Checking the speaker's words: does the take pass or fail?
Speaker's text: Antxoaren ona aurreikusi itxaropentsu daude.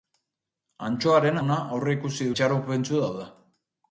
pass